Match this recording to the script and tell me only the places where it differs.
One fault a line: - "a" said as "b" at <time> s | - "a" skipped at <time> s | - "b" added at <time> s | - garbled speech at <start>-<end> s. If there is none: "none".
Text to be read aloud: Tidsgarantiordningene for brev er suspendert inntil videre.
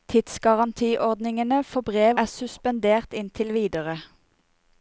none